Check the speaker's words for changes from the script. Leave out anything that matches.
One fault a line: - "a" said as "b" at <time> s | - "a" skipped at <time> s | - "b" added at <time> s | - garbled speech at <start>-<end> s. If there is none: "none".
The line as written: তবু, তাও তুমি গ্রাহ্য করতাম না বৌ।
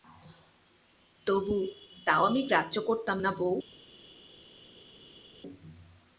- "তুমি" said as "আমি" at 2.2 s